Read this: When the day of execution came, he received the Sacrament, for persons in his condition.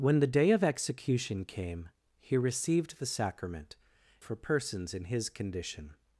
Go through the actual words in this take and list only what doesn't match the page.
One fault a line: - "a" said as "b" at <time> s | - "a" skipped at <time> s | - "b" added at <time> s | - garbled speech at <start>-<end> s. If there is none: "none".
none